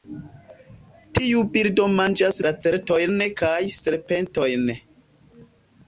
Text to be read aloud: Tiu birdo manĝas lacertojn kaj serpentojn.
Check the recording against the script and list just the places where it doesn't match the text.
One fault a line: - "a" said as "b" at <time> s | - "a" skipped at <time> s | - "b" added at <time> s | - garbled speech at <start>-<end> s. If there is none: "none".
none